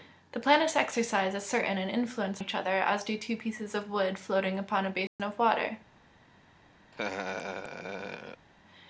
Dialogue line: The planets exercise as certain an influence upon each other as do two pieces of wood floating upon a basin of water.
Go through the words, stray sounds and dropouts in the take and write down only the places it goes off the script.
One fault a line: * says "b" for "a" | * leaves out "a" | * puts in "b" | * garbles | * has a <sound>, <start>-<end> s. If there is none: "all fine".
* leaves out "upon"
* has a dropout, 5.1-5.2 s
* has a laugh, 6.9-8.5 s